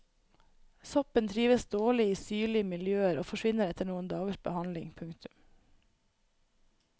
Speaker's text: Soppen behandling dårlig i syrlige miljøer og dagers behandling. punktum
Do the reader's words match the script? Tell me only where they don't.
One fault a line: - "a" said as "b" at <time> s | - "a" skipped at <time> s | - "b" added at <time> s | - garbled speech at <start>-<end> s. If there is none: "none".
- "behandling" said as "trives" at 1.3 s
- "forsvinner etter noen" added at 3.3 s